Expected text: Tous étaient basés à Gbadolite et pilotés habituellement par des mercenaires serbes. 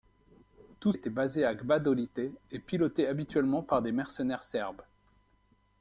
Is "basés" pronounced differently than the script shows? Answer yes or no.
no